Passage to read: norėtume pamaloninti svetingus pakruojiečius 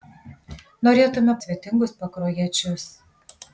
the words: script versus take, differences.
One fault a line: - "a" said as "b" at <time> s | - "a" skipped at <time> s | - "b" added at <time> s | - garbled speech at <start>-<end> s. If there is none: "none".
- "pamaloninti" skipped at 1.4 s